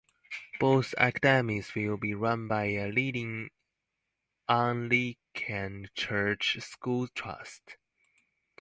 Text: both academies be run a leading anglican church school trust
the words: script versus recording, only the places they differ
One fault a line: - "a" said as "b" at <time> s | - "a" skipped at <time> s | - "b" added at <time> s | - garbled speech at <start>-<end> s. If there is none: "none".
- "will" added at 1.8 s
- "by" added at 2.5 s